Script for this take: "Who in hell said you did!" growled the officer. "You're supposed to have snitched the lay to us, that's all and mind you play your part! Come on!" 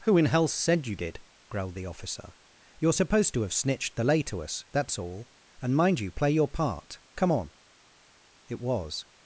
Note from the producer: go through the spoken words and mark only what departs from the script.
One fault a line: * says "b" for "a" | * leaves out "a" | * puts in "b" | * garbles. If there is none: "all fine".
* puts in "It was"